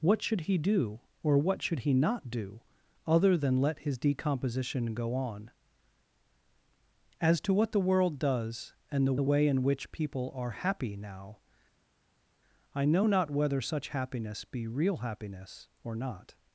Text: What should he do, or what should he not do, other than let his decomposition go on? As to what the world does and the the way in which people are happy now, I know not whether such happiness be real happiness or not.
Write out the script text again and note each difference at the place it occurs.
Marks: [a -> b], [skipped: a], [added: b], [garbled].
What should he do, or what should he not do, other than let his decomposition go on? As to what the world does and the the way in which people are happy now, I know not whether such happiness be real happiness or not.